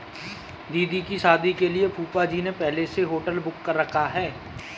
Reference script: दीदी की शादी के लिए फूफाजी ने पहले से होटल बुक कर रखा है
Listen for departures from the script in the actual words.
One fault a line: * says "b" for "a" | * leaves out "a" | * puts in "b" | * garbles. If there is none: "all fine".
all fine